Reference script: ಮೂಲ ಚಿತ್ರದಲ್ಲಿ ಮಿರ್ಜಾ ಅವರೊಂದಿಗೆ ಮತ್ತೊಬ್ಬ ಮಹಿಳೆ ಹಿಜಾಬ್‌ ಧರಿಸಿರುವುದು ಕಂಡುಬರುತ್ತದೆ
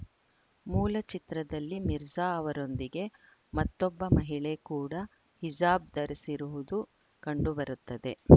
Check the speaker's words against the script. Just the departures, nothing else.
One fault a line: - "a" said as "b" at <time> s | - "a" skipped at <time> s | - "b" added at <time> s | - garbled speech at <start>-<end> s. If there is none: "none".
- "ಕೂಡ" added at 4.7 s